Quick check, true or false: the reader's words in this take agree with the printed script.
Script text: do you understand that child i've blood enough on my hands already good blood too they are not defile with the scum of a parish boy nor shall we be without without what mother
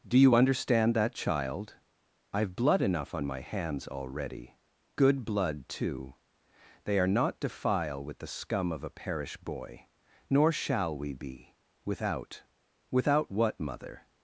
true